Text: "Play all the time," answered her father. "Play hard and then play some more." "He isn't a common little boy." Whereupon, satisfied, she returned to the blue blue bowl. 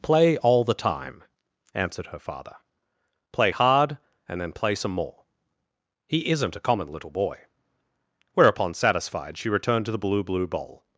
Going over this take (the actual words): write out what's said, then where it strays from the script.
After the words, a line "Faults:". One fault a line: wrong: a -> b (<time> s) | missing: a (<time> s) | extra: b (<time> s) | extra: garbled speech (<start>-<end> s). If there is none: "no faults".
"Play all the time," answered her father. "Play hard and then play some more." "He isn't a common little boy." Whereupon, satisfied, she returned to the blue blue bowl.
Faults:
no faults